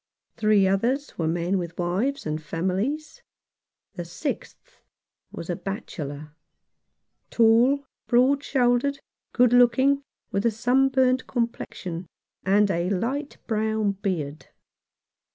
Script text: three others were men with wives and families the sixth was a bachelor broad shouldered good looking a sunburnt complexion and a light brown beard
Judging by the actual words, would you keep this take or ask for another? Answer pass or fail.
fail